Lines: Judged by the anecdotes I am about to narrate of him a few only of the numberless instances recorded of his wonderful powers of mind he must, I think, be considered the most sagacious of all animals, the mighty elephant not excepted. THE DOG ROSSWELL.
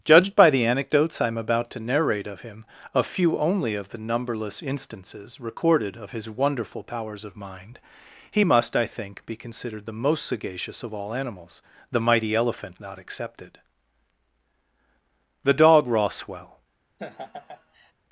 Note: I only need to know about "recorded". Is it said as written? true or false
true